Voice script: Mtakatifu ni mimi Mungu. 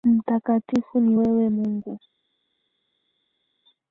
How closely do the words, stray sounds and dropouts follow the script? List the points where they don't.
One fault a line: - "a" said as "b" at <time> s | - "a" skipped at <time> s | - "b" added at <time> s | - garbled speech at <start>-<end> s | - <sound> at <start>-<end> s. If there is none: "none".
- "mimi" said as "wewe" at 1.1 s